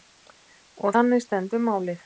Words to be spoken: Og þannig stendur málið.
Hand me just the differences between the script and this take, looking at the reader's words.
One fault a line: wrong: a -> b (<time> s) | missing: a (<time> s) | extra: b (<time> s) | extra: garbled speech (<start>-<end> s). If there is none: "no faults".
no faults